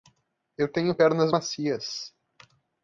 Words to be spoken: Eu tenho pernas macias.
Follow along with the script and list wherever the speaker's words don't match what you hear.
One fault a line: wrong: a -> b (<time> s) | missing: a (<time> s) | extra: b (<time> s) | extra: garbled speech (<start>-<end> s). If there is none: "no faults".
no faults